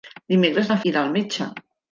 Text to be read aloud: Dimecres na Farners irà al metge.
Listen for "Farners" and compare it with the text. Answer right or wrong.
wrong